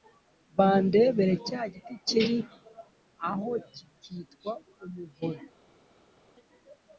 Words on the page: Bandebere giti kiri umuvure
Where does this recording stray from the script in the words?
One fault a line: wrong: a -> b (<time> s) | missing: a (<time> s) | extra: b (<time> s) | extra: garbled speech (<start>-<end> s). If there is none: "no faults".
extra: cya (1.5 s)
extra: aho kikitwa (3.3 s)